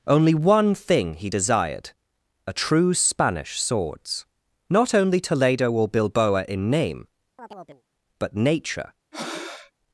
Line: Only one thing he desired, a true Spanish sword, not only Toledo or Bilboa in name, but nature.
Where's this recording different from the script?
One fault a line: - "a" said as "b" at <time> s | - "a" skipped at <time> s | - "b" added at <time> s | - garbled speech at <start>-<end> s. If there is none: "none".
- "sword" said as "swords" at 3.6 s